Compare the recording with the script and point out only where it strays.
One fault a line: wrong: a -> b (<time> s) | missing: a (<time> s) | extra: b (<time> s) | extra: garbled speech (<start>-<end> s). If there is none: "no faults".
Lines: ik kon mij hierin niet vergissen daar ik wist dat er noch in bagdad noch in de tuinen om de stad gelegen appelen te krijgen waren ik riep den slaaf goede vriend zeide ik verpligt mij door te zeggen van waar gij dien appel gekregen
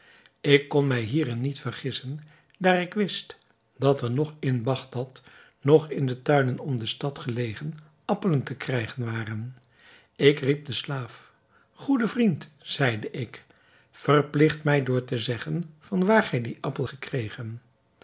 no faults